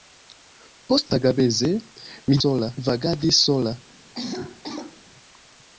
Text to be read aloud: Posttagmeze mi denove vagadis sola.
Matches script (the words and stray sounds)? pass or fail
fail